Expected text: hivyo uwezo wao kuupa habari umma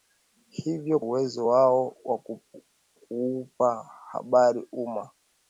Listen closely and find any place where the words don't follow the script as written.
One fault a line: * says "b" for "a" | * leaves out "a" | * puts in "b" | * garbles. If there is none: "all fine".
all fine